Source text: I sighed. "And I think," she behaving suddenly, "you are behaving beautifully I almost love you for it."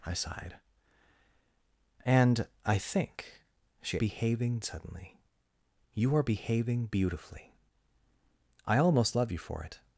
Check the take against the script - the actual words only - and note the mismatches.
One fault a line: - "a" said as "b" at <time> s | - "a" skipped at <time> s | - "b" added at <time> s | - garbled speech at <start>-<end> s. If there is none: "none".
none